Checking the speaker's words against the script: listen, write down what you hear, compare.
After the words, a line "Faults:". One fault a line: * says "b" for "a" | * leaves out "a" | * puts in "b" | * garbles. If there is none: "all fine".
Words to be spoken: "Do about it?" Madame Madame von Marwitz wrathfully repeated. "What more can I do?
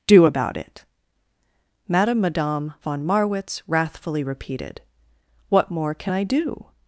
"Do about it?" Madame Madame von Marwitz wrathfully repeated. "What more can I do?
Faults:
all fine